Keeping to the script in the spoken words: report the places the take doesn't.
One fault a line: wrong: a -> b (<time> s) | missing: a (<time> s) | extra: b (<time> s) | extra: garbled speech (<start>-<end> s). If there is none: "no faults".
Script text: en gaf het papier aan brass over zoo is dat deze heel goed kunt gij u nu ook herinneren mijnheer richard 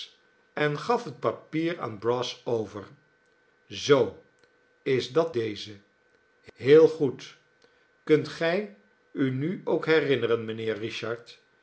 no faults